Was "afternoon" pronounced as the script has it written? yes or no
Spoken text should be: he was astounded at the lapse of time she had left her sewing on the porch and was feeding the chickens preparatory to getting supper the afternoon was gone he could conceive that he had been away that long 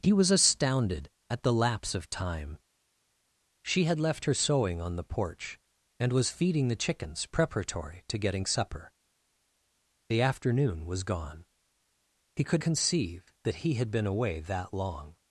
yes